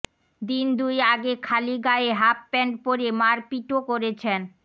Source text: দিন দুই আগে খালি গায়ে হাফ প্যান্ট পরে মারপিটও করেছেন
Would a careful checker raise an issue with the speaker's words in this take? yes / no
no